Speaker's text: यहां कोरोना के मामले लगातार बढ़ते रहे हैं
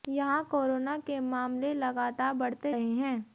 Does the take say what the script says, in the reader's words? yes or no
yes